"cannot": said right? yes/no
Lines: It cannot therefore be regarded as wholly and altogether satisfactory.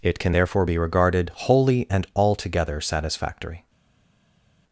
no